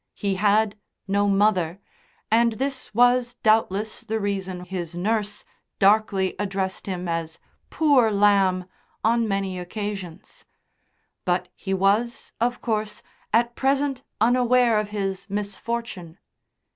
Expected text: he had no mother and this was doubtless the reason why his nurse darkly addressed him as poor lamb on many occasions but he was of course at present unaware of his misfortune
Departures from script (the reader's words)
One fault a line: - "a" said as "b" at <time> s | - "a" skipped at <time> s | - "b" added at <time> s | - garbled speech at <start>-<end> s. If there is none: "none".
- "why" skipped at 4.6 s